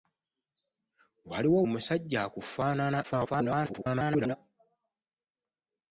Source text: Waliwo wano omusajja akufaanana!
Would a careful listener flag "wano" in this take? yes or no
yes